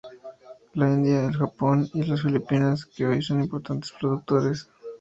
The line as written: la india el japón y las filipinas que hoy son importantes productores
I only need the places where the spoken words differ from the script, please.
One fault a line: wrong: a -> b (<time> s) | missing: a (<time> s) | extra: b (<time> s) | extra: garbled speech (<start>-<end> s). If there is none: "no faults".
no faults